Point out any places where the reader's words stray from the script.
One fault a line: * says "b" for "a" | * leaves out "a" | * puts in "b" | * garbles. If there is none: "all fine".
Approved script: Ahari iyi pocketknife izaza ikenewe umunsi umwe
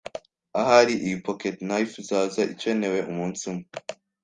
all fine